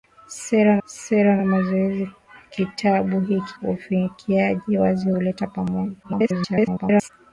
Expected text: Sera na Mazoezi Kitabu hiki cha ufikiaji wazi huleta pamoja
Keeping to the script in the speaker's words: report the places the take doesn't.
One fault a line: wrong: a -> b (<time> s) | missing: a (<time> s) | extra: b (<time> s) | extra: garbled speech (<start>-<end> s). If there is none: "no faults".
extra: sera (0.9 s)
missing: cha (3.5 s)
extra: garbled speech (6.0-7.1 s)